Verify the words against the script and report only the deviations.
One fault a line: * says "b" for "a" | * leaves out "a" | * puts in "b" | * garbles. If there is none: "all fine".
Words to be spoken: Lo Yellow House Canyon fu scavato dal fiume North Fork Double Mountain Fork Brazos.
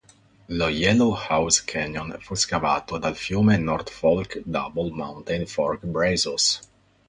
all fine